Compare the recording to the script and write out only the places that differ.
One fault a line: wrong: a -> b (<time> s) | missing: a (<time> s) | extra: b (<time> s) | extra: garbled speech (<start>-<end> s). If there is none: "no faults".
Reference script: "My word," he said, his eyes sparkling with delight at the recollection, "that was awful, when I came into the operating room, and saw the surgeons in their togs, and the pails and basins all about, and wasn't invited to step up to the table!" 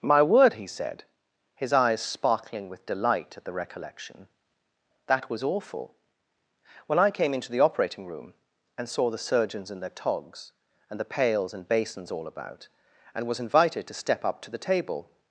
wrong: wasn't -> was (13.3 s)